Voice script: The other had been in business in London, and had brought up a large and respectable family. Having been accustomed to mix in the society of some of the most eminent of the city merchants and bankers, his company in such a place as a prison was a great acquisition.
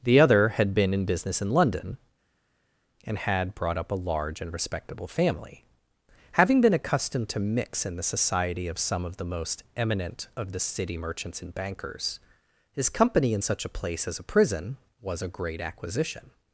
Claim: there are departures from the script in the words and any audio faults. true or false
false